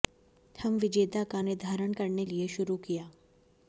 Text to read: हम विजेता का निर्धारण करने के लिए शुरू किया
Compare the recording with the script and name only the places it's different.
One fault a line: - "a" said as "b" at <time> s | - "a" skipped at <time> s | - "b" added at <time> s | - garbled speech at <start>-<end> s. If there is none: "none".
- "के" skipped at 2.2 s